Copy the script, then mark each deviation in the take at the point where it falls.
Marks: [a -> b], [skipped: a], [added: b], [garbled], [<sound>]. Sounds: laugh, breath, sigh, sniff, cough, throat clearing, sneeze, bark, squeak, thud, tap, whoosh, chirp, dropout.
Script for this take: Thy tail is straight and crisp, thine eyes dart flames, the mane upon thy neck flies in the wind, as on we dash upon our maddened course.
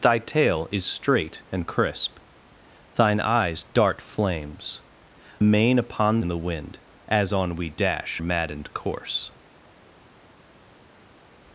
Thy tail is straight and crisp, thine eyes dart flames, [skipped: the] mane upon [skipped: thy neck flies] in the wind, as on we dash [skipped: upon our] maddened course.